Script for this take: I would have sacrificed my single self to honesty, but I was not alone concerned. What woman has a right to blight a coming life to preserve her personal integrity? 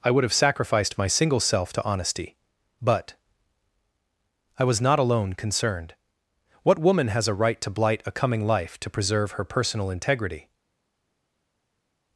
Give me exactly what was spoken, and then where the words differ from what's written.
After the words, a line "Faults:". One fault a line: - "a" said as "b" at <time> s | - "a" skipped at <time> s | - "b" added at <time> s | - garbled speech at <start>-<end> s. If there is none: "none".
I would have sacrificed my single self to honesty, but I was not alone concerned. What woman has a right to blight a coming life to preserve her personal integrity?
Faults:
none